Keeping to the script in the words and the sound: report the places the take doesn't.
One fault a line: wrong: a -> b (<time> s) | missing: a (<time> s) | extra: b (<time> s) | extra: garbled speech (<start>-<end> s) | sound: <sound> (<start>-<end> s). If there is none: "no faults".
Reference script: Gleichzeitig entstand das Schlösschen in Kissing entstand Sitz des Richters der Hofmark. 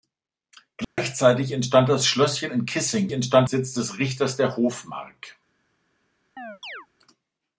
sound: dropout (0.8-1.0 s)
sound: chirp (6.4-6.9 s)